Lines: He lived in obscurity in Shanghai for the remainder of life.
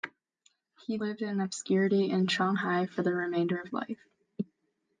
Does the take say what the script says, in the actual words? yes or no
yes